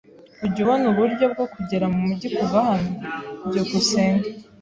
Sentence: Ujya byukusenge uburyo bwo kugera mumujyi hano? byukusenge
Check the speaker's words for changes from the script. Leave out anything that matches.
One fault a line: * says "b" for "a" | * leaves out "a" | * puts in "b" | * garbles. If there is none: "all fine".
* says "ubona" for "byukusenge"
* puts in "kuva"